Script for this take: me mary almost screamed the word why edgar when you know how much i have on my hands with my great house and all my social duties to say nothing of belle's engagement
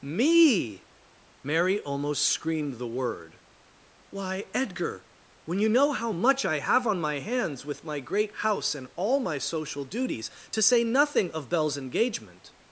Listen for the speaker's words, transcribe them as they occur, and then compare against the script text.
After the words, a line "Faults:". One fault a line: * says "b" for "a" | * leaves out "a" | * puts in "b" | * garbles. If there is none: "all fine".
me mary almost screamed the word why edgar when you know how much i have on my hands with my great house and all my social duties to say nothing of belle's engagement
Faults:
all fine